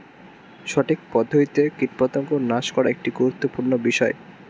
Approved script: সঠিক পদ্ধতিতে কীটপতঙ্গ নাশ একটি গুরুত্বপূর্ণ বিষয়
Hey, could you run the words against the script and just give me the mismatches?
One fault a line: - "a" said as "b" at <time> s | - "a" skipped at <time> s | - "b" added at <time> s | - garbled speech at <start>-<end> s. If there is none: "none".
- "করা" added at 2.7 s